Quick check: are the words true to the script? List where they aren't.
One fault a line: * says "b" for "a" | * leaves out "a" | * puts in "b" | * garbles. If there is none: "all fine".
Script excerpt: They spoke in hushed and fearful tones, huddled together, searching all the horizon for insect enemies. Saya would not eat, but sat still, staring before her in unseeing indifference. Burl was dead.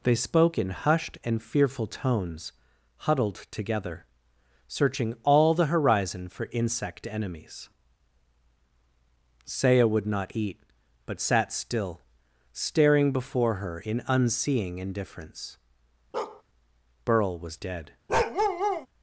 all fine